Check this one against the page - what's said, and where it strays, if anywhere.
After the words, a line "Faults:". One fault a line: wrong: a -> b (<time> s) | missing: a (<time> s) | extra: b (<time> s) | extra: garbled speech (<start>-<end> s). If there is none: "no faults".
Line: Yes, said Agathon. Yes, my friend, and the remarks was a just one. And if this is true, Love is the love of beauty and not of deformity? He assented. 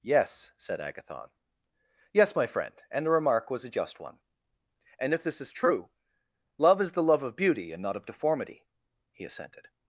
Yes, said Agathon. Yes, my friend, and the remark was a just one. And if this is true, Love is the love of beauty and not of deformity? He assented.
Faults:
wrong: remarks -> remark (3.1 s)